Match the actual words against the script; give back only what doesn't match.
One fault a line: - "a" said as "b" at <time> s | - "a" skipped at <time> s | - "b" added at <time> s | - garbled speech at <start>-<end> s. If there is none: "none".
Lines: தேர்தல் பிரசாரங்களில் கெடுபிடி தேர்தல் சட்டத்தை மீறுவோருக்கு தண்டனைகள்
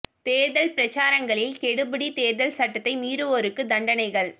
none